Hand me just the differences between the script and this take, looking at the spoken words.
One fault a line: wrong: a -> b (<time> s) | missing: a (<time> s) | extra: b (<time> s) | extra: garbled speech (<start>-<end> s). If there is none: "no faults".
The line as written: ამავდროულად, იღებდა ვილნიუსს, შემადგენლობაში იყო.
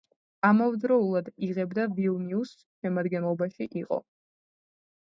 no faults